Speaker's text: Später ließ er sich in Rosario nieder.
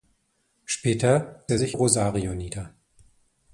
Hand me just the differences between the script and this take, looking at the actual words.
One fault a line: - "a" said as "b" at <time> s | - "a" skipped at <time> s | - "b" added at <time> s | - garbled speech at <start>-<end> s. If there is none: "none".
- "ließ" skipped at 1.4 s
- "in" skipped at 1.8 s